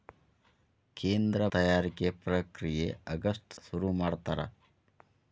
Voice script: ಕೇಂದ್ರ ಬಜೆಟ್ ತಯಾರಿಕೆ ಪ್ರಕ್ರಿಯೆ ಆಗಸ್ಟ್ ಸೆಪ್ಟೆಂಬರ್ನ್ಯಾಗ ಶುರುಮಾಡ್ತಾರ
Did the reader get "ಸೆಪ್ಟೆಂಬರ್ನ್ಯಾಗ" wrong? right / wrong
wrong